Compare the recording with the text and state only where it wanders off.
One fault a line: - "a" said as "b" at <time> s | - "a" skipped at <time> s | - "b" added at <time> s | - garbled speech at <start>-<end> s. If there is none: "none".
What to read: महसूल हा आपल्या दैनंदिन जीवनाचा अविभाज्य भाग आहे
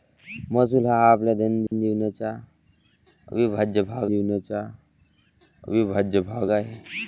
- "जीवनाचा अविभाज्य भाग" added at 4.1 s